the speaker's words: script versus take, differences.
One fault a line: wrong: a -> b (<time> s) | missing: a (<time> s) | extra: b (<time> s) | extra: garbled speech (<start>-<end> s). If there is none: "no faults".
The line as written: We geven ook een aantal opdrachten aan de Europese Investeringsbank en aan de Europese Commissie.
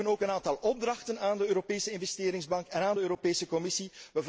no faults